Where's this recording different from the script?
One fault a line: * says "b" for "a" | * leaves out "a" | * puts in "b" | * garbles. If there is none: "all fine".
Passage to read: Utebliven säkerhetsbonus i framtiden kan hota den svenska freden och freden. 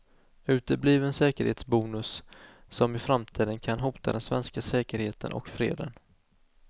* puts in "som"
* says "säkerheten" for "freden"